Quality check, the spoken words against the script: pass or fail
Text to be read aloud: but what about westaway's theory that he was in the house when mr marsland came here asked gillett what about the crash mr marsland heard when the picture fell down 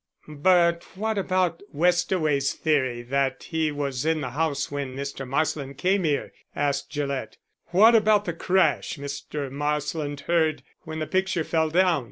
pass